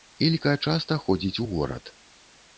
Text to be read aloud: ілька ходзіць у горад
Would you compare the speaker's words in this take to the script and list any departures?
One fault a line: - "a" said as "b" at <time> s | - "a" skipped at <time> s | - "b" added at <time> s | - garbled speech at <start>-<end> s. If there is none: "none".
- "часта" added at 0.7 s